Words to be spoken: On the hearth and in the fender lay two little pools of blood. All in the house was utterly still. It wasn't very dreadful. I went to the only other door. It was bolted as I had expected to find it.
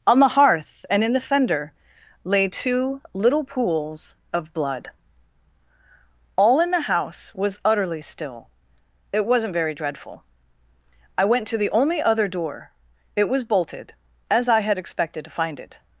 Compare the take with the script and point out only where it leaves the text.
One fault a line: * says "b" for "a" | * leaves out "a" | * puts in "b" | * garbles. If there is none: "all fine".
all fine